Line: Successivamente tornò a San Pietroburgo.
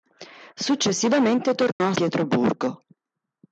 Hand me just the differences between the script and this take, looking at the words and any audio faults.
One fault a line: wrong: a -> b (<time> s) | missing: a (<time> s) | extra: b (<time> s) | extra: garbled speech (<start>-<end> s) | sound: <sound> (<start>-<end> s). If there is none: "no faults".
sound: dropout (1.7-1.8 s)
missing: San (1.9 s)